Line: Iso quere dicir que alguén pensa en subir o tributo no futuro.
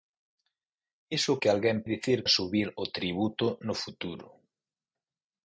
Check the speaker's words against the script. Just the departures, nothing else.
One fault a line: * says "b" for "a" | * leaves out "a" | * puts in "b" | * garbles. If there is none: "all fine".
* leaves out "quere dicir"
* says "dicir" for "pensa"